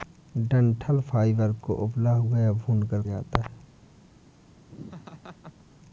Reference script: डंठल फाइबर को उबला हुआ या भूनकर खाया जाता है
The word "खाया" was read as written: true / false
false